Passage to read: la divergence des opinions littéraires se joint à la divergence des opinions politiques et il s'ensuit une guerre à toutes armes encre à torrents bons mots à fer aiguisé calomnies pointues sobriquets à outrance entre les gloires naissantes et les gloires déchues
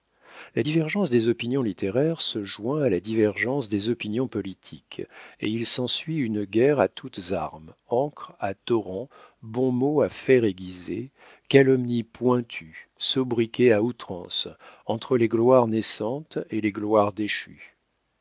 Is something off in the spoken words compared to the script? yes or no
no